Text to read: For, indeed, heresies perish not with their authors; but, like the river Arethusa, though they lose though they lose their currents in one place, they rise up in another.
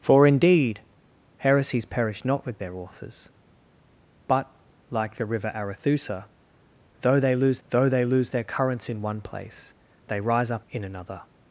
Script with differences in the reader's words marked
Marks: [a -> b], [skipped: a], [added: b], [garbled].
For, indeed, heresies perish not with their authors; but, like the river Arethusa, though they lose though they lose their currents in one place, they rise up in another.